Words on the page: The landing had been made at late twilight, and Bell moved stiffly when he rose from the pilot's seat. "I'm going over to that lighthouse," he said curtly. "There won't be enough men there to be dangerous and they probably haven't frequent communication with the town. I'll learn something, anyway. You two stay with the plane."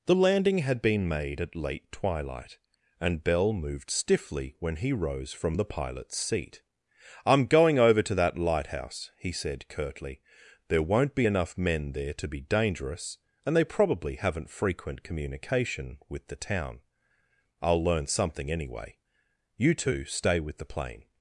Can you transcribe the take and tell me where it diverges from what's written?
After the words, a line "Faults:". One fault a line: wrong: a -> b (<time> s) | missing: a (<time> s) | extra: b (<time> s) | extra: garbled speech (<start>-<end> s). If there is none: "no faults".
The landing had been made at late twilight, and Bell moved stiffly when he rose from the pilot's seat. "I'm going over to that lighthouse," he said curtly. "There won't be enough men there to be dangerous and they probably haven't frequent communication with the town. I'll learn something, anyway. You two stay with the plane."
Faults:
no faults